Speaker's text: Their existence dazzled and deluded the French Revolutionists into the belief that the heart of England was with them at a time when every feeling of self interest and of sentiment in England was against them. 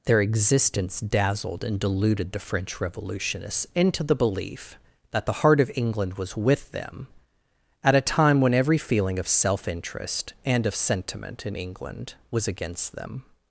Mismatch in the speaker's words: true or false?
false